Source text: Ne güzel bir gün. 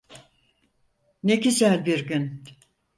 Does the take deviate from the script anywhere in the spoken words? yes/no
no